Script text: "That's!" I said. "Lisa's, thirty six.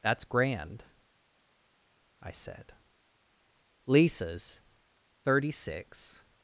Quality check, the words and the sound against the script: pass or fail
fail